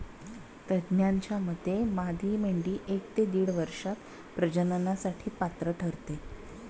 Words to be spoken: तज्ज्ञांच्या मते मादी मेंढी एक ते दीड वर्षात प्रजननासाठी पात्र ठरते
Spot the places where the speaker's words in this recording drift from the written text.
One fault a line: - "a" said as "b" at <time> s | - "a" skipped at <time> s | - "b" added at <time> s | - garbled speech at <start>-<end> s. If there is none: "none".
none